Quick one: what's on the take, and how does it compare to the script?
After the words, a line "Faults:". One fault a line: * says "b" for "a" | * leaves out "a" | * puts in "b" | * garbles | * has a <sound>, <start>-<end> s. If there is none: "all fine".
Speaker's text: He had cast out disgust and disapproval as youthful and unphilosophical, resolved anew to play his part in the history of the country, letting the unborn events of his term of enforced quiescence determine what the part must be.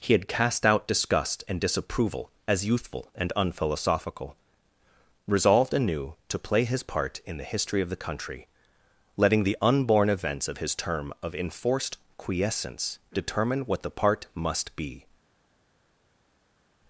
He had cast out disgust and disapproval as youthful and unphilosophical, resolved anew to play his part in the history of the country, letting the unborn events of his term of enforced quiescence determine what the part must be.
Faults:
all fine